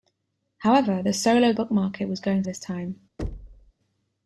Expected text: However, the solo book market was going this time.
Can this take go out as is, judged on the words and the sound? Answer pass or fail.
fail